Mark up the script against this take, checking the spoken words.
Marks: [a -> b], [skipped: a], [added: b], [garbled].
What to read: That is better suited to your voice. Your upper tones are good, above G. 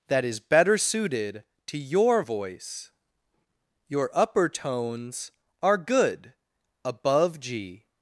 That is better suited to your voice. Your upper tones are good, above G.